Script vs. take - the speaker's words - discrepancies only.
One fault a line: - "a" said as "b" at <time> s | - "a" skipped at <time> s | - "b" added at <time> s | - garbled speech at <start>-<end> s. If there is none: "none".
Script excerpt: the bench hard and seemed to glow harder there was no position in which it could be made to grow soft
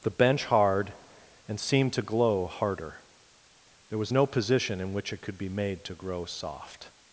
none